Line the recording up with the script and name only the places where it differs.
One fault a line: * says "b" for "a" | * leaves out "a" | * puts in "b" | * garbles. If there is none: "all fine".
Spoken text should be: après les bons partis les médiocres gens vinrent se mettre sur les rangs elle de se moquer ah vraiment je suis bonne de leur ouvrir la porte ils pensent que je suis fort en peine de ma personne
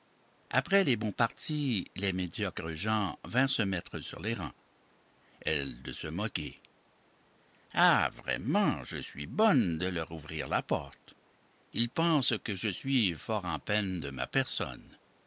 all fine